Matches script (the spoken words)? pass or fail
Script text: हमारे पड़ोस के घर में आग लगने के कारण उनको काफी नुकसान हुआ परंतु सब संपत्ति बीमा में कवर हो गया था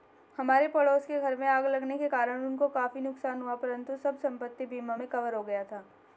pass